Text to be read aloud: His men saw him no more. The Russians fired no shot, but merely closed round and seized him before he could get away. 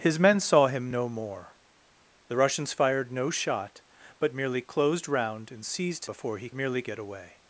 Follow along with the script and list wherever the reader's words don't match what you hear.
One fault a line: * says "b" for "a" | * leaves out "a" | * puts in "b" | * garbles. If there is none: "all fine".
* leaves out "him"
* says "merely" for "could"